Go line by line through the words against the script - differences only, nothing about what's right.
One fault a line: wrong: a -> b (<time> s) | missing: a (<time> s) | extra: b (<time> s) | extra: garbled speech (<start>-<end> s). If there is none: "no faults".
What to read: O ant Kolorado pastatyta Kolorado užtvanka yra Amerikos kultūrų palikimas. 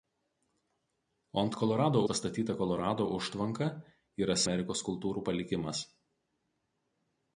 no faults